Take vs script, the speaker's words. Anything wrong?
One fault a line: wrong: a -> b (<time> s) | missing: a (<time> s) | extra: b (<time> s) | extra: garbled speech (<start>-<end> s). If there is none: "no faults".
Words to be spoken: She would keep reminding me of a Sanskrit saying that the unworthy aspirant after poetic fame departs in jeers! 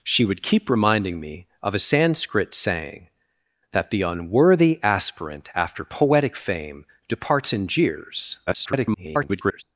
extra: garbled speech (8.5-9.6 s)